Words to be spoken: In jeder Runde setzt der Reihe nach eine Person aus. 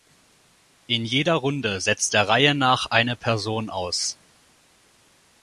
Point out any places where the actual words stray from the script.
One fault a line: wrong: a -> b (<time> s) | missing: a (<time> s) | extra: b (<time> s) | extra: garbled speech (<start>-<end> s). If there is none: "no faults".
no faults